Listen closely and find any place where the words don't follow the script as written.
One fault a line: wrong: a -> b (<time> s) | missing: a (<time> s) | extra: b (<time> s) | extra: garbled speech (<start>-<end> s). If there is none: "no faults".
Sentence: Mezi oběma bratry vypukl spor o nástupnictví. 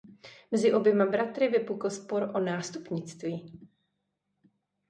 no faults